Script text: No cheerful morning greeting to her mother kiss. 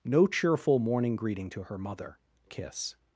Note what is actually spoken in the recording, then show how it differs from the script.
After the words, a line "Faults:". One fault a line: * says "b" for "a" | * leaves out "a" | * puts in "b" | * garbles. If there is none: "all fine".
No cheerful morning greeting to her mother kiss.
Faults:
all fine